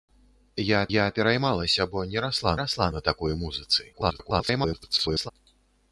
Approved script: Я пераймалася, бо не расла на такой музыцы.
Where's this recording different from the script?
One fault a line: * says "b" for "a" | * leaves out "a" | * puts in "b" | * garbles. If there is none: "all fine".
* puts in "я"
* puts in "расла"
* garbles